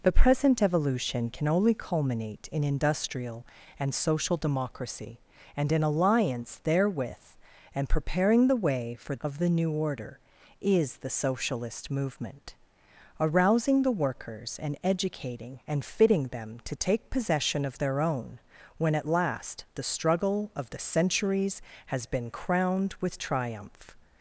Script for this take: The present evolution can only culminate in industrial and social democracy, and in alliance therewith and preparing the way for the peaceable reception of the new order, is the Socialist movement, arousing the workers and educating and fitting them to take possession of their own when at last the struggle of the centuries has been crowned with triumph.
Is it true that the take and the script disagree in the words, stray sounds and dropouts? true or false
true